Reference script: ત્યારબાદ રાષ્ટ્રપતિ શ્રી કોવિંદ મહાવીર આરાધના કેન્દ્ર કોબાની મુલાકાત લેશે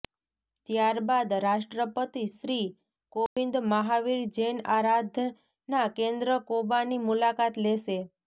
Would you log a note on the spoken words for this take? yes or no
yes